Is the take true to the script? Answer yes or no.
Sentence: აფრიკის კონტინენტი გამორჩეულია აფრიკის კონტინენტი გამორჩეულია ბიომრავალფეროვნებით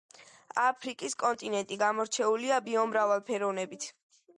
no